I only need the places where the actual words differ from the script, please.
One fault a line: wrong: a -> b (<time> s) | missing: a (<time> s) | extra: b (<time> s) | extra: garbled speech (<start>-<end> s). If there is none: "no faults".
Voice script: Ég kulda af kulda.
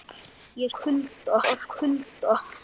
no faults